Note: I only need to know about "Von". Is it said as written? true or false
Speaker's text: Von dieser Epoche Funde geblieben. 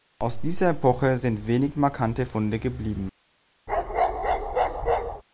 false